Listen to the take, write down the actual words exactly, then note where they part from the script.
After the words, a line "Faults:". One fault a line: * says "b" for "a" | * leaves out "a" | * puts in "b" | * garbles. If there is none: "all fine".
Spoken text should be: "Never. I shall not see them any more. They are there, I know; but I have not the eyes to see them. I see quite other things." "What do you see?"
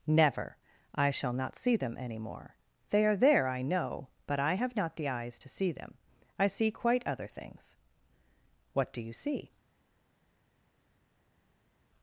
"Never. I shall not see them any more. They are there, I know; but I have not the eyes to see them. I see quite other things." "What do you see?"
Faults:
all fine